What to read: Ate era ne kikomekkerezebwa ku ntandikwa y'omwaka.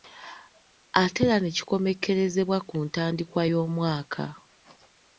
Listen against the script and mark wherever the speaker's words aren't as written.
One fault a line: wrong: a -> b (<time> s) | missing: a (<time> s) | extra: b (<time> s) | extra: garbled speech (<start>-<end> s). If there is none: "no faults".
no faults